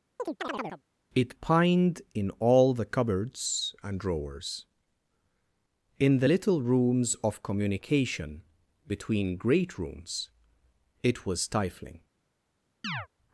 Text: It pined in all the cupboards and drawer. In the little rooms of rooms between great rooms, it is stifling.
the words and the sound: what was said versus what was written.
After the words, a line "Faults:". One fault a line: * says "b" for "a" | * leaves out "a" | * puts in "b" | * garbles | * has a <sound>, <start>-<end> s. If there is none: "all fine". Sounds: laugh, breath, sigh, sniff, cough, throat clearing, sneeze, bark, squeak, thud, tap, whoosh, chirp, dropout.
It pined in all the cupboards and drawers. In the little rooms of communication between great rooms, it was stifling.
Faults:
* has a chirp, 0.2-0.8 s
* says "drawers" for "drawer"
* says "communication" for "rooms"
* says "was" for "is"
* has a chirp, 12.8-13.1 s